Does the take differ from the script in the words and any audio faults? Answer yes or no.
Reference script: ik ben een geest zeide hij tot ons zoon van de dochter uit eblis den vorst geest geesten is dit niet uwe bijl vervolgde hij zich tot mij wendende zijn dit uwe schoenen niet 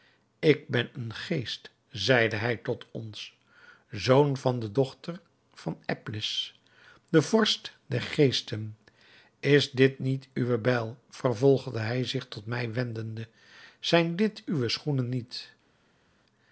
yes